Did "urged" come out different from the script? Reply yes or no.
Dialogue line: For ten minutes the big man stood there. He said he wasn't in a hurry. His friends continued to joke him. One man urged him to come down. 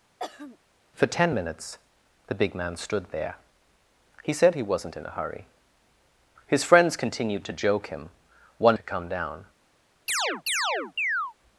yes